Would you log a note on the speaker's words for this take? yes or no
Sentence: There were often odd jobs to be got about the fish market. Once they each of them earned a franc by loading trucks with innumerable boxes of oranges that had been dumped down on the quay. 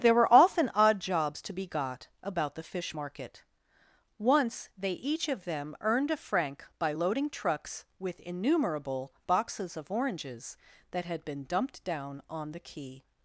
no